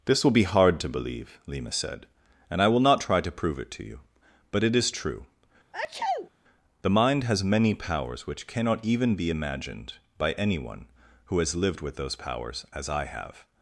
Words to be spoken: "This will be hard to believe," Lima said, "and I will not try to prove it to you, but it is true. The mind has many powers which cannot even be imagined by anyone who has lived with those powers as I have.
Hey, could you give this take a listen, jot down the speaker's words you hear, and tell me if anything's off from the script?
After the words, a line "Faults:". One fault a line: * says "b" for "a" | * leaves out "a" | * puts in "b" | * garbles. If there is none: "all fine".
"This will be hard to believe," Lima said, "and I will not try to prove it to you, but it is true. The mind has many powers which cannot even be imagined by anyone who has lived with those powers as I have.
Faults:
all fine